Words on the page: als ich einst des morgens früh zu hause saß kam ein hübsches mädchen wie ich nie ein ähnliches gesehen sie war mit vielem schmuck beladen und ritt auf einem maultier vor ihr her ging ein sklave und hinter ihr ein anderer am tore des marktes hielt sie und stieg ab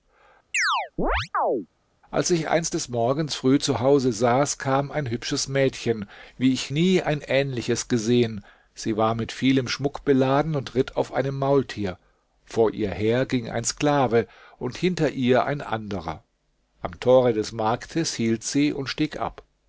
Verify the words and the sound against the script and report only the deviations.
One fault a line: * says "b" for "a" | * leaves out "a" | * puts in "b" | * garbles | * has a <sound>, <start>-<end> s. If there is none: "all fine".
* has a chirp, 0.5-1.7 s